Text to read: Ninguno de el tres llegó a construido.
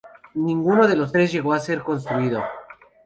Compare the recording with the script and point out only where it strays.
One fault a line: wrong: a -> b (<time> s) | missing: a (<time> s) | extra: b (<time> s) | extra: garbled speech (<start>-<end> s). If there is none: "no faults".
wrong: el -> los (0.9 s)
extra: ser (1.6 s)